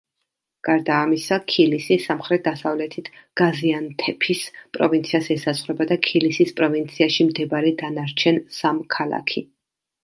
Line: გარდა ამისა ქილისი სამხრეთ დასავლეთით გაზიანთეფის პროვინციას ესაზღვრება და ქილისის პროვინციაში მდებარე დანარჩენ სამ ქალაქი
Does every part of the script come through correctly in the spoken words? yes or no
yes